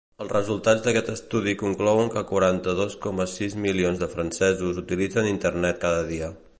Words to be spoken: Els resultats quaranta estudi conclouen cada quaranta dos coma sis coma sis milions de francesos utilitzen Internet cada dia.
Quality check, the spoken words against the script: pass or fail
fail